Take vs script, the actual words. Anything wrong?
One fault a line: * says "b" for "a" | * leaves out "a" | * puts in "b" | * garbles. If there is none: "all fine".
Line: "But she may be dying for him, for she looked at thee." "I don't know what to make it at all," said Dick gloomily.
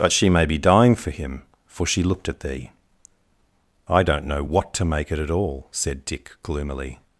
all fine